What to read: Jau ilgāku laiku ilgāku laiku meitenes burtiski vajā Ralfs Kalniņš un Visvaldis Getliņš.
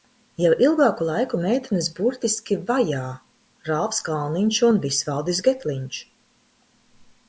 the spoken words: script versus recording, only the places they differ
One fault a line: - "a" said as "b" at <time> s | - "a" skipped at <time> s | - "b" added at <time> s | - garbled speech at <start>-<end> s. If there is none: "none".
- "ilgāku laiku" skipped at 1.4 s